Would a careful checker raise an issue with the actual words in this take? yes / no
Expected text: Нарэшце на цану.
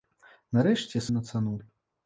no